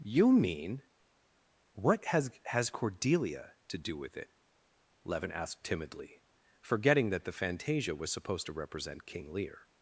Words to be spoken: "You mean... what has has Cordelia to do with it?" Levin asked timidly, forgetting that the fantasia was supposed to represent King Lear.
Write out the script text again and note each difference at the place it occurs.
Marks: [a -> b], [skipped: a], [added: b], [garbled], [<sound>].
"You mean... what has has Cordelia to do with it?" Levin asked timidly, forgetting that the fantasia was supposed to represent King Lear.